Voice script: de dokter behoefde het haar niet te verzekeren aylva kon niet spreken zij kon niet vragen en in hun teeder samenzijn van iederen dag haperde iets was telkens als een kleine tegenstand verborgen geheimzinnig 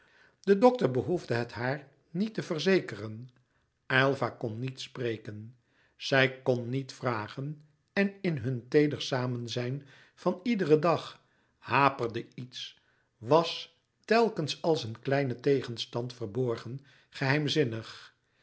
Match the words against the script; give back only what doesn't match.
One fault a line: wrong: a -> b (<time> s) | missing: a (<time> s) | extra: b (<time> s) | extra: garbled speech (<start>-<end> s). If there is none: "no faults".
no faults